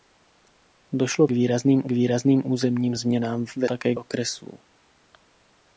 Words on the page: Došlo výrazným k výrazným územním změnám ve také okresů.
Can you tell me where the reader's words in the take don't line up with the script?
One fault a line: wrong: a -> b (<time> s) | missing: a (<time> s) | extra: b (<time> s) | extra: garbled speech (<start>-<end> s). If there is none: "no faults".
no faults